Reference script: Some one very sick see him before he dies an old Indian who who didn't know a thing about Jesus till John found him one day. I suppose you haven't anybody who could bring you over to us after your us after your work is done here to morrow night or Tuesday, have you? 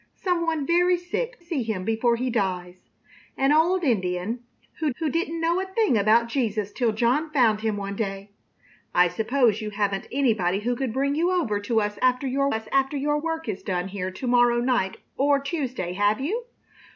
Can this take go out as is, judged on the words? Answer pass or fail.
pass